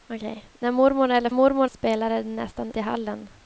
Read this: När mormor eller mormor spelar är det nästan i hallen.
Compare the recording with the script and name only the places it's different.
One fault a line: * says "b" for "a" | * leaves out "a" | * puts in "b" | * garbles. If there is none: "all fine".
all fine